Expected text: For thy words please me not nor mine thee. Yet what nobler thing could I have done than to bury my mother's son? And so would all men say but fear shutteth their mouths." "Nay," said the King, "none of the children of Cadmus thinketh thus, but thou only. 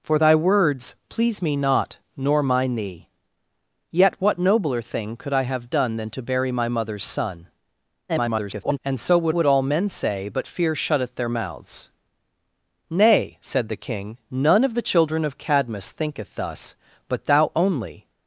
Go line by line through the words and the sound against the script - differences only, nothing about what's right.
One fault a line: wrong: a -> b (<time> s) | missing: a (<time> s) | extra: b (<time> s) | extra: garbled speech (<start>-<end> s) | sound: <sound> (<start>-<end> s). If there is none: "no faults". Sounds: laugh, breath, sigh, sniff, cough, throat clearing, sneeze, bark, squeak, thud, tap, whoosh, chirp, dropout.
extra: garbled speech (8.1-8.8 s)
extra: would (9.3 s)